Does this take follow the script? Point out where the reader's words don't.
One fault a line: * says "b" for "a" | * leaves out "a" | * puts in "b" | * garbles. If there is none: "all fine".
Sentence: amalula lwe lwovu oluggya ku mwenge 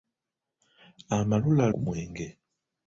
* leaves out "lwe lwovu oluggya"